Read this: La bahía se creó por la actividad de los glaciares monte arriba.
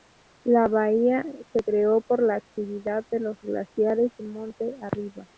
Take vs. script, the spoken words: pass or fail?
pass